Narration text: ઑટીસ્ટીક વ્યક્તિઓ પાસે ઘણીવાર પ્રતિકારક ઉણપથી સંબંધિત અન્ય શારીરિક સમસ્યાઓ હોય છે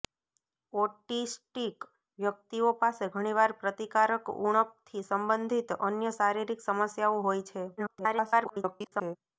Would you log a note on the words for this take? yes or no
yes